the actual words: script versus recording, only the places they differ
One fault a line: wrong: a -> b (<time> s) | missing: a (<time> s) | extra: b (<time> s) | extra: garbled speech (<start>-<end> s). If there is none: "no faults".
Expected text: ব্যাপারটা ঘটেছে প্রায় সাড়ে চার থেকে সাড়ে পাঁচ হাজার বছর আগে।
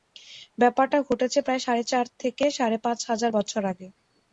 no faults